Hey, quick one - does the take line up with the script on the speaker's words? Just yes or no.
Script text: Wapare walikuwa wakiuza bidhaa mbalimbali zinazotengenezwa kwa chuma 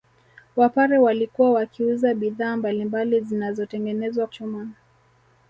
no